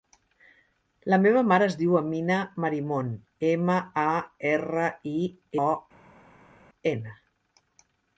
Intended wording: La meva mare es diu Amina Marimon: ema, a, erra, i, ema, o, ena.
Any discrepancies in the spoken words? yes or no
yes